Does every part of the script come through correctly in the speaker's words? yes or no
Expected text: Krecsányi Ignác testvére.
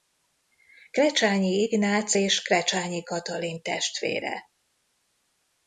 no